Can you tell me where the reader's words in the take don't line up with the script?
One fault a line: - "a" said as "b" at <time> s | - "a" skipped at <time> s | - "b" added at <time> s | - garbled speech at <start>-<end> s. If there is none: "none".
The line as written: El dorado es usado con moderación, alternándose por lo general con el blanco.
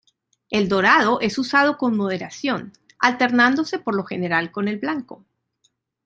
none